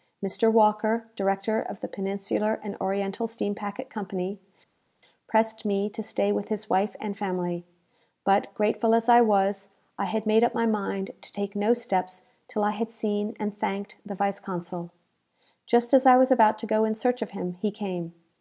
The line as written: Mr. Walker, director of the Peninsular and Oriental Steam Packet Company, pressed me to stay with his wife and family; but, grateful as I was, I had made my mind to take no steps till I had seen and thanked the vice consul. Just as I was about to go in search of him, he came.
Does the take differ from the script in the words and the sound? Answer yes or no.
yes